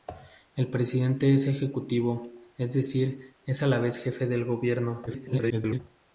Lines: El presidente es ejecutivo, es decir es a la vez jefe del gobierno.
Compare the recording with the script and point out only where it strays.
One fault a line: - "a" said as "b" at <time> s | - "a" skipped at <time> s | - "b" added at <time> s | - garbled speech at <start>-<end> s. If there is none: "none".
- garbled speech at 5.1-5.8 s